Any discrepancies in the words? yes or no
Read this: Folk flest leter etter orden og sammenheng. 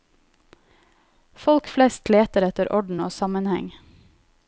no